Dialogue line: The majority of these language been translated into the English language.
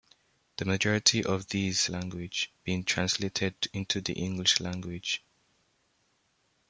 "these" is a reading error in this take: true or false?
false